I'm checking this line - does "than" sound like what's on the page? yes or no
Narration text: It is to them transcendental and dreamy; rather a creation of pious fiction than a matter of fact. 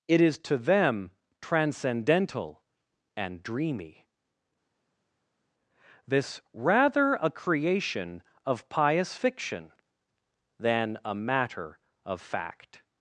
yes